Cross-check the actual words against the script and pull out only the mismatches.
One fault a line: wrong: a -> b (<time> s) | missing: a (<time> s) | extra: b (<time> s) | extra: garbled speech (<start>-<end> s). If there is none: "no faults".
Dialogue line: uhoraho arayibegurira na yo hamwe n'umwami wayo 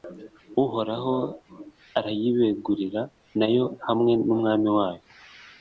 no faults